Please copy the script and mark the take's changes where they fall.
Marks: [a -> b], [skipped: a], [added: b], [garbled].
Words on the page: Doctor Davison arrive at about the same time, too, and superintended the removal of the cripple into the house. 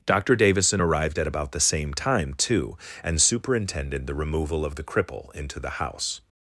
Doctor Davison [arrive -> arrived] at about the same time, too, and superintended the removal of the cripple into the house.